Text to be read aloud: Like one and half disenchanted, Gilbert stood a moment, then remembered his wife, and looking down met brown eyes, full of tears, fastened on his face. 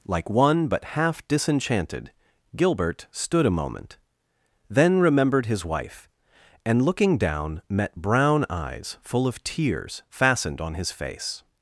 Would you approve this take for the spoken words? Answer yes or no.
no